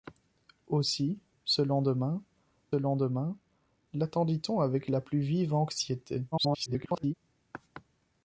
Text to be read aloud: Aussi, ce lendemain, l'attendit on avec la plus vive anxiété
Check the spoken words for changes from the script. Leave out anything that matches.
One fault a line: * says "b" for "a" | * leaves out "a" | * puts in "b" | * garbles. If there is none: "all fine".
* puts in "lendemain"
* garbles